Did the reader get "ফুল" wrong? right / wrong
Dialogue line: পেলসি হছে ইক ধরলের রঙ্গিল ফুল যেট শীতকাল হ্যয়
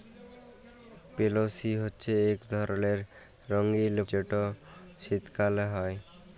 wrong